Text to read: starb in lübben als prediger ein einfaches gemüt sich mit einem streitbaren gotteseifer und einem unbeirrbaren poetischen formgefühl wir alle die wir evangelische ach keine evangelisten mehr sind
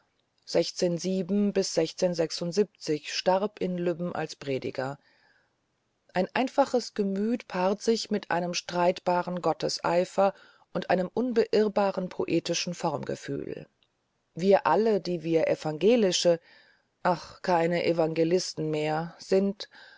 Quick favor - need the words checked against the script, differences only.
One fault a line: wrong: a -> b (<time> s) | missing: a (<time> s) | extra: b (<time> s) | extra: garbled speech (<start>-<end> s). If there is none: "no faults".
extra: paart (7.5 s)